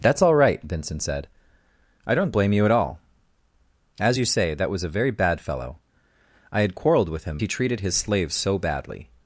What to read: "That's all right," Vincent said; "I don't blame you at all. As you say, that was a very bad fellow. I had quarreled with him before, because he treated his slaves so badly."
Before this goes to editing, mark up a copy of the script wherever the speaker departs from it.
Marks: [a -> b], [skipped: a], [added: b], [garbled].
"That's all right," Vincent said; "I don't blame you at all. As you say, that was a very bad fellow. I had quarreled with him [skipped: before, because] he treated his slaves so badly."